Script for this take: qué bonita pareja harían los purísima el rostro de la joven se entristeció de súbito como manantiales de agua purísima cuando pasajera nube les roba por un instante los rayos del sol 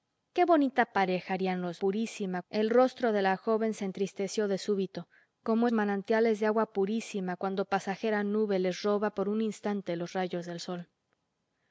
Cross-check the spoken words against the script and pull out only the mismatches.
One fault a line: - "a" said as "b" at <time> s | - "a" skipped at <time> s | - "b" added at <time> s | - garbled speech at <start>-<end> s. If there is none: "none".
none